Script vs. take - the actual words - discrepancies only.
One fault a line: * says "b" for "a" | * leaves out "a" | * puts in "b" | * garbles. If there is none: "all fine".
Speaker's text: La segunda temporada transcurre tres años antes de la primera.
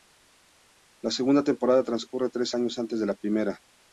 all fine